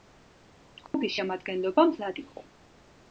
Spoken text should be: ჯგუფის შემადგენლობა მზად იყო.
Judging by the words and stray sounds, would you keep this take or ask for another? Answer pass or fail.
fail